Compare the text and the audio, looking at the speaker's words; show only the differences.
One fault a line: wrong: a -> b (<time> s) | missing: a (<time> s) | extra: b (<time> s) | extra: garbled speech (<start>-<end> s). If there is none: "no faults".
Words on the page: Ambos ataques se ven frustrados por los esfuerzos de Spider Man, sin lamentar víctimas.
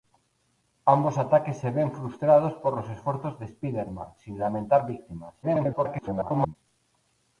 extra: garbled speech (5.4-6.6 s)